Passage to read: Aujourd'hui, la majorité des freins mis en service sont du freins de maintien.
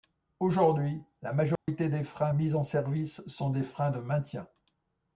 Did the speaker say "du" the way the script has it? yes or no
no